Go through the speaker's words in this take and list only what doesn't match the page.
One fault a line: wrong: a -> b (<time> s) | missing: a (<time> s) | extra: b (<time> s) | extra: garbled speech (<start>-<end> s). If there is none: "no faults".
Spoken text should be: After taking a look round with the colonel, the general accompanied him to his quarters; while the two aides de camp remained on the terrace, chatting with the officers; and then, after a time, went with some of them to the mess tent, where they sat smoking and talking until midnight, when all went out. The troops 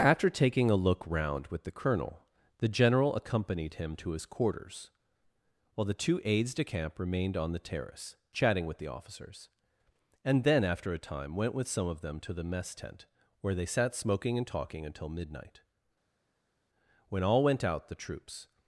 no faults